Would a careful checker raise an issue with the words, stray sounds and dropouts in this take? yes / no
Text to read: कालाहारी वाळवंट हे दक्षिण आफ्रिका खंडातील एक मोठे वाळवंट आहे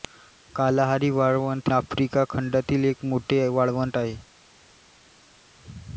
yes